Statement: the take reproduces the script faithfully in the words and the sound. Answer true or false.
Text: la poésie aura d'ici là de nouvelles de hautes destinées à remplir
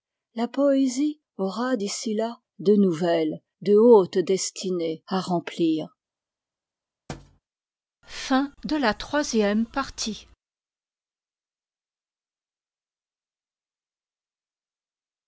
false